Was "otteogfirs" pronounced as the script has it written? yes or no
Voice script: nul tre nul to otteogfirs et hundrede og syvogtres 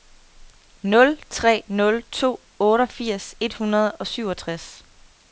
yes